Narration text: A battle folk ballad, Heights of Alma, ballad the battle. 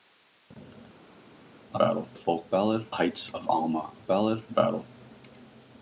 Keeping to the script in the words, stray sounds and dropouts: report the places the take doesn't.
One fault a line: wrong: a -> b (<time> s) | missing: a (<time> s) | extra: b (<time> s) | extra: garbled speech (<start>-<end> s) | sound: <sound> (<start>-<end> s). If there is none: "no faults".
no faults